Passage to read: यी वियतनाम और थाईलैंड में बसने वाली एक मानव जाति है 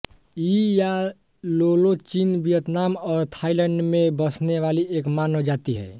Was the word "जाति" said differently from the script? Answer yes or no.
no